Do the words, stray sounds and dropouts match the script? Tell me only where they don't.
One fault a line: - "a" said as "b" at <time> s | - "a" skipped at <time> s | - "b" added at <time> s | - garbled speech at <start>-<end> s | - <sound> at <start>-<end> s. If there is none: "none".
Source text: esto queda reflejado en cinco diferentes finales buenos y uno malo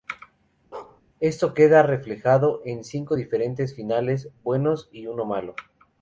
- bark at 0.7-1.0 s